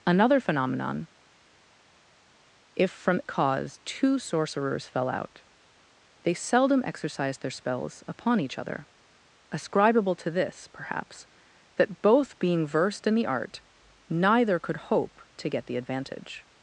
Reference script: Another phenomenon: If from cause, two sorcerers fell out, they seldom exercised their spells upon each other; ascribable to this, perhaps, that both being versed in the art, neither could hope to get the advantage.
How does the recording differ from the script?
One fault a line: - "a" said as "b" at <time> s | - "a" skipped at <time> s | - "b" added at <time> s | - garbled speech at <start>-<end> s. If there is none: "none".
none